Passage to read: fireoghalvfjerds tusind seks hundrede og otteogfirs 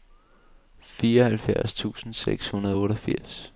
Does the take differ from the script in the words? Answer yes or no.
no